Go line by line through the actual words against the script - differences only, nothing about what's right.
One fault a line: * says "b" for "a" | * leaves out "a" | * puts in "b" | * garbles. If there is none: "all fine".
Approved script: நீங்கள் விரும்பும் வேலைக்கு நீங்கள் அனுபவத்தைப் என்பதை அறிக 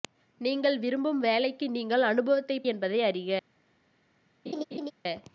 all fine